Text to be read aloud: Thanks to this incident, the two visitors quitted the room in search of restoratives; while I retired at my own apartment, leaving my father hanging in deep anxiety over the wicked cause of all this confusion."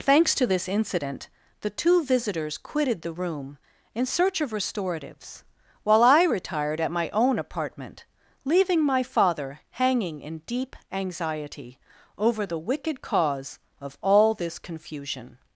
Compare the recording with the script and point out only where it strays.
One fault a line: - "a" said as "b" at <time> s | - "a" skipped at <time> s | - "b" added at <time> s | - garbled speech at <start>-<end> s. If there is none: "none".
none